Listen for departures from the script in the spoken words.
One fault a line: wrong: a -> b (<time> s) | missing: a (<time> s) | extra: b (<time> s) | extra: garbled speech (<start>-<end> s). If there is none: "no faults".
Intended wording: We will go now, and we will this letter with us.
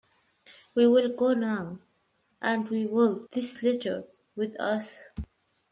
no faults